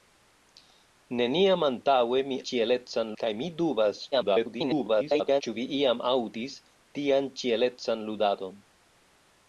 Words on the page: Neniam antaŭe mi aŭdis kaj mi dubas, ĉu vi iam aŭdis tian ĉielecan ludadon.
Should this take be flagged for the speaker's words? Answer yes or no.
yes